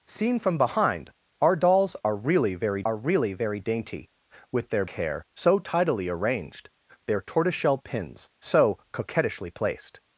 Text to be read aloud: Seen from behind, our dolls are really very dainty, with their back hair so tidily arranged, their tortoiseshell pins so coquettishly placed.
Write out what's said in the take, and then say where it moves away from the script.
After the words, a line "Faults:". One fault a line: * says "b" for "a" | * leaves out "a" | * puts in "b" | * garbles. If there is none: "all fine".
Seen from behind, our dolls are really very are really very dainty, with their hair so tidily arranged, their tortoiseshell pins so coquettishly placed.
Faults:
* puts in "are really very"
* leaves out "back"